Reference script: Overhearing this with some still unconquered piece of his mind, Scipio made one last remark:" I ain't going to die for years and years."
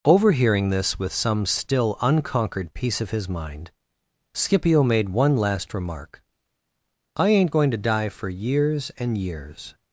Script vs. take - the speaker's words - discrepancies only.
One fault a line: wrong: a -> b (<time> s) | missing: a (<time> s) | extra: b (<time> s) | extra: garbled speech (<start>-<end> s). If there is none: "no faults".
no faults